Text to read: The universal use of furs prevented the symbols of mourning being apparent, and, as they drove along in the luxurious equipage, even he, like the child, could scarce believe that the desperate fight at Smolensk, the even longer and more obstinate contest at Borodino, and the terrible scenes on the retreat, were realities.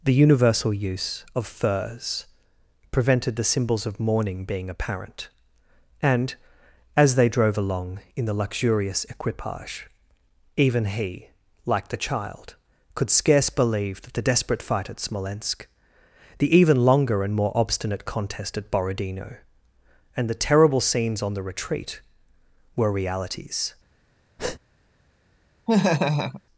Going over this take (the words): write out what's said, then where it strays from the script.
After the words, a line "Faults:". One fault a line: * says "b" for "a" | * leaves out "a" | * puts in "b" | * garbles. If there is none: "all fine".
The universal use of furs prevented the symbols of mourning being apparent, and, as they drove along in the luxurious equipage, even he, like the child, could scarce believe that the desperate fight at Smolensk, the even longer and more obstinate contest at Borodino, and the terrible scenes on the retreat, were realities.
Faults:
all fine